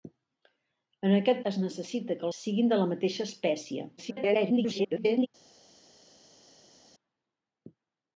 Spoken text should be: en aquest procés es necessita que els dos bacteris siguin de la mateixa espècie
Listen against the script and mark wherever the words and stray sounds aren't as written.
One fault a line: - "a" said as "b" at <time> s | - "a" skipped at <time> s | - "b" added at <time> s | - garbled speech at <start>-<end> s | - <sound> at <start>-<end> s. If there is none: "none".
- "procés" skipped at 1.4 s
- "els dos bacteris" skipped at 2.3 s
- garbled speech at 4.0-5.3 s